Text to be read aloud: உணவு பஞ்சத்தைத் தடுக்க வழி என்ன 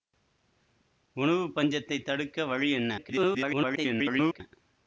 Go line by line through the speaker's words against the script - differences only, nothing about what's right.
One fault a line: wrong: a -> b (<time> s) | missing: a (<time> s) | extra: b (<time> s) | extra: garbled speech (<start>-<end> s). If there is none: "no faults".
extra: garbled speech (3.0-4.4 s)